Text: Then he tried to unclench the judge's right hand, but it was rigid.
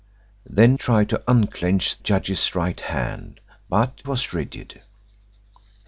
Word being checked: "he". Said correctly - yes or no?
no